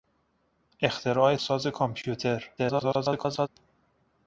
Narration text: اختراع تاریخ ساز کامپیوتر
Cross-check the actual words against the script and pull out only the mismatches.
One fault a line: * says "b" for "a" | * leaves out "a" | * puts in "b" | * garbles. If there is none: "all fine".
* leaves out "تاریخ"
* garbles